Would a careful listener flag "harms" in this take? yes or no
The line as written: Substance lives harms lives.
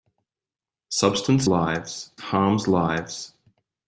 no